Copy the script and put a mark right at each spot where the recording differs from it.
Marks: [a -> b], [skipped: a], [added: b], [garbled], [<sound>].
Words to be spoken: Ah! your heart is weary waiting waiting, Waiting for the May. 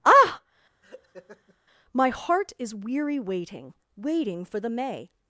Ah! [laugh] [your -> my] heart is weary waiting waiting, [skipped: Waiting] for the May.